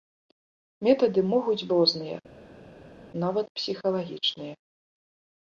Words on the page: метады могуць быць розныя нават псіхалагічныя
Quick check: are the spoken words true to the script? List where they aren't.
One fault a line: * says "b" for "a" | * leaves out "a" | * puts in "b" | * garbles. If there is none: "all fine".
* leaves out "быць"